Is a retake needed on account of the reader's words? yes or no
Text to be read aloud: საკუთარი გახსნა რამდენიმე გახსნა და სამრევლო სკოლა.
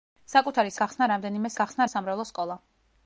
no